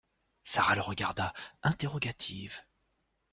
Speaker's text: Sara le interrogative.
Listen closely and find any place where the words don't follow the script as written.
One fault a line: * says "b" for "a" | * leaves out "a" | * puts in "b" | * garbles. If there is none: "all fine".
* puts in "regarda"